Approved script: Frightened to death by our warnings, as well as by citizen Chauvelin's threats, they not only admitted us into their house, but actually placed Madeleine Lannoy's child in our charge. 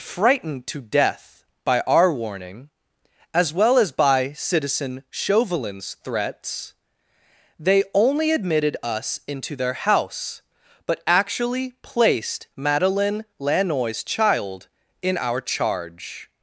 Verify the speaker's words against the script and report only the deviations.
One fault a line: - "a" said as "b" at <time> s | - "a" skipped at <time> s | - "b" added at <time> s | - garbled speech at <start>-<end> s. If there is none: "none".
- "warnings" said as "warning" at 2.1 s
- "not" skipped at 7.8 s